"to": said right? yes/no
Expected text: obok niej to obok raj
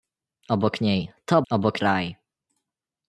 yes